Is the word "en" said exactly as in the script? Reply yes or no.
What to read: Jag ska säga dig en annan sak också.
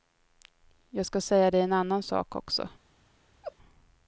yes